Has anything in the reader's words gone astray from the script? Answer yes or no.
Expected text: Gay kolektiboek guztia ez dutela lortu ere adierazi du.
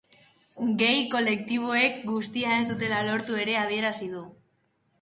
no